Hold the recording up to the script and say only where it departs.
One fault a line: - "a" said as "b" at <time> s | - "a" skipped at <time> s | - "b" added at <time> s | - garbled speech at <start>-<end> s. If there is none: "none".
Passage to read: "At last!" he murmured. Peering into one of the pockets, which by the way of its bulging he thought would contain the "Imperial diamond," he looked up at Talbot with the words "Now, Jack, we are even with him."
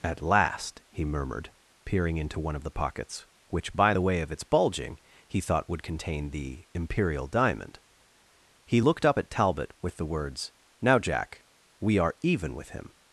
none